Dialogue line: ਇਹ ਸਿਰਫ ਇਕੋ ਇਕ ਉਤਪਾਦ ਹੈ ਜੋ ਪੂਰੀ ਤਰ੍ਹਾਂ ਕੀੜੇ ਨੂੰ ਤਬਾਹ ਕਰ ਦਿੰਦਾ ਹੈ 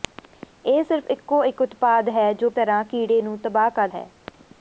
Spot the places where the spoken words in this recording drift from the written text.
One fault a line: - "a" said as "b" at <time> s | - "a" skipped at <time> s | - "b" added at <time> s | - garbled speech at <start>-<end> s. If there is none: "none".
- "ਪੂਰੀ" skipped at 2.5 s
- "ਦਿੰਦਾ" skipped at 3.9 s